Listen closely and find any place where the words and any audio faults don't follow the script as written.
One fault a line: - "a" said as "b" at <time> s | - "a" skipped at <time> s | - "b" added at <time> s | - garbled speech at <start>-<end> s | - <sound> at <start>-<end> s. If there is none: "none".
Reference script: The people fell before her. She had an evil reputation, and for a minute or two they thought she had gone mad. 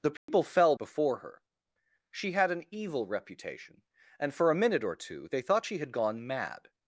- dropout at 0.2-0.3 s